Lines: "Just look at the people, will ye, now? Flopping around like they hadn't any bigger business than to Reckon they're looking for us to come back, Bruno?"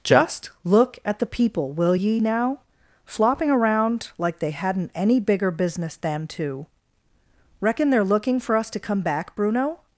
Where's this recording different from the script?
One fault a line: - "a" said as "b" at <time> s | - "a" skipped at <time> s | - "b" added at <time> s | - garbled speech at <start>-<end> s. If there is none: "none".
none